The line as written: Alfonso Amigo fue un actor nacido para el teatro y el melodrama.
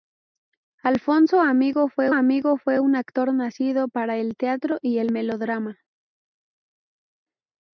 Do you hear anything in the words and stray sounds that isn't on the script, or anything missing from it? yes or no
yes